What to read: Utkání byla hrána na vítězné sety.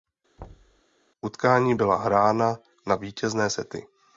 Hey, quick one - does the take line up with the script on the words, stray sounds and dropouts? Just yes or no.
no